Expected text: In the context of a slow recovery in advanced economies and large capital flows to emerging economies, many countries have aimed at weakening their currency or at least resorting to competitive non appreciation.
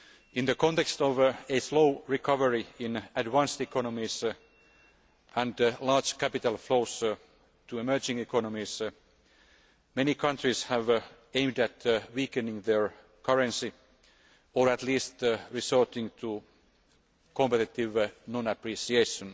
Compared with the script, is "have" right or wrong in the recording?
right